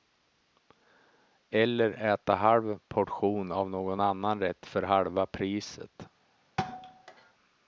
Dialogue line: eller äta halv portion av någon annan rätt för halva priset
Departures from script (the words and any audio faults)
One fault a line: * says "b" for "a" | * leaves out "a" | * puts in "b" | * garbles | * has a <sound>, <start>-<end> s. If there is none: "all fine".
* has a thud, 6.6-7.3 s